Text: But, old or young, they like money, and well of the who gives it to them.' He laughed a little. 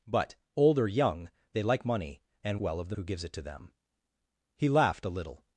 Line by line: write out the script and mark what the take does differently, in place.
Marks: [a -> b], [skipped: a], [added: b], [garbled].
But, old or young, they like money, and well of the who gives it to them.' He laughed a little.